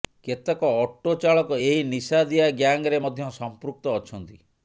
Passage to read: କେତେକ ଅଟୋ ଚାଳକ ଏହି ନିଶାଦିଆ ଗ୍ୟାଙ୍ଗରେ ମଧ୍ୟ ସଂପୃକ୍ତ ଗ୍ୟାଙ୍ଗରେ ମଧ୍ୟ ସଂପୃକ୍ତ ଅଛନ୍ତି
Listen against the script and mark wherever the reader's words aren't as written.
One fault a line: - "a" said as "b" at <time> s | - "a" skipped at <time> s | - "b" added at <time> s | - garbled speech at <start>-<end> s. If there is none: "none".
- "ଗ୍ୟାଙ୍ଗରେ ମଧ୍ୟ ସଂପୃକ୍ତ" skipped at 4.0 s